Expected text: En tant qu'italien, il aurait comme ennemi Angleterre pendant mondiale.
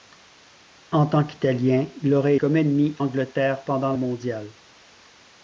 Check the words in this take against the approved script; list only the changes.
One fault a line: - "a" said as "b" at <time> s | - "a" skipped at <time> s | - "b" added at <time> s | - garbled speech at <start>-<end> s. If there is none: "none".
none